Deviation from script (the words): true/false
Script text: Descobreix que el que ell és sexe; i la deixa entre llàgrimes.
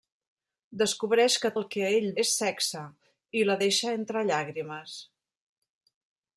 false